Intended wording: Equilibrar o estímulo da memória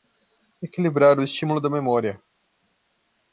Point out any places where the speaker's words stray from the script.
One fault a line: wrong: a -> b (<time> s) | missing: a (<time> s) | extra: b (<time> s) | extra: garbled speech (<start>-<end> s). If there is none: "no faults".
no faults